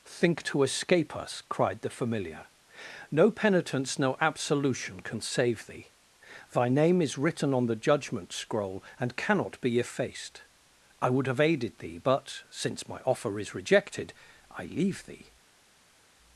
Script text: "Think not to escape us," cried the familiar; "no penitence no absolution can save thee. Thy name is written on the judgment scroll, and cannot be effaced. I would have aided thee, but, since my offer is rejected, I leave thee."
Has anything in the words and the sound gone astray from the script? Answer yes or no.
yes